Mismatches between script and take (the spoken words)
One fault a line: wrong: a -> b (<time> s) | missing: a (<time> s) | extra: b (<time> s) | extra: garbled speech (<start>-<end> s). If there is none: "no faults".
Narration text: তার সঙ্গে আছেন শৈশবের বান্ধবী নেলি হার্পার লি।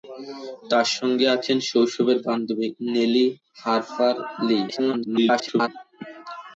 extra: garbled speech (4.7-5.7 s)